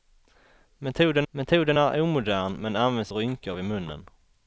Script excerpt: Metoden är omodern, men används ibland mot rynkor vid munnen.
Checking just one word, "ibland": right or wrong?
wrong